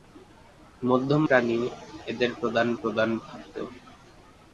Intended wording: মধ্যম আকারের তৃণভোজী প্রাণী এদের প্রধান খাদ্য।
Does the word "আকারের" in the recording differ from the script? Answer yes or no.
yes